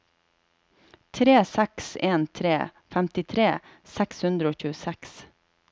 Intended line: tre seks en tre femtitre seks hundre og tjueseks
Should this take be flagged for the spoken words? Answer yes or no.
no